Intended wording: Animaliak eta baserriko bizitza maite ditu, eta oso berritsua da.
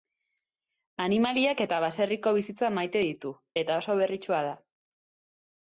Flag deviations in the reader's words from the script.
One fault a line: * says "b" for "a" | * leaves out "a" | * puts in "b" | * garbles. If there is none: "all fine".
all fine